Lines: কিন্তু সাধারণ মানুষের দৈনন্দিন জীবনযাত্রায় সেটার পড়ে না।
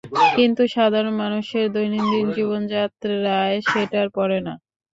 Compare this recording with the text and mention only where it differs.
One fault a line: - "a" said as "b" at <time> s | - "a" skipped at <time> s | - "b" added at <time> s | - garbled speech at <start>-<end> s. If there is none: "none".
none